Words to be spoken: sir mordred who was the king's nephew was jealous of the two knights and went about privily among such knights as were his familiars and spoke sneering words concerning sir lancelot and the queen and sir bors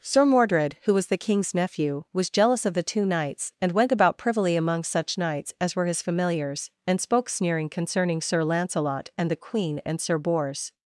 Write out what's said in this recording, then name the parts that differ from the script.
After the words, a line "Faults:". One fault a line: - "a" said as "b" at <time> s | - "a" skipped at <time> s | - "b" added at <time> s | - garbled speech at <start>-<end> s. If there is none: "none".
sir mordred who was the king's nephew was jealous of the two knights and went about privily among such knights as were his familiars and spoke sneering concerning sir lancelot and the queen and sir bors
Faults:
- "words" skipped at 7.7 s